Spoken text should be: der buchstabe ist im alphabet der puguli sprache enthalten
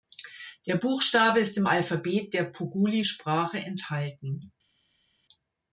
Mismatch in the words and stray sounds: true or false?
false